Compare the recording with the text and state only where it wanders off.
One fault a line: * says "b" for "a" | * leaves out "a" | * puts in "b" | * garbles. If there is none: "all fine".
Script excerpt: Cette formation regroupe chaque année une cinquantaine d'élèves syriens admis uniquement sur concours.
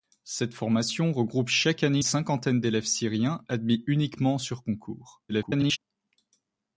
* leaves out "une"
* garbles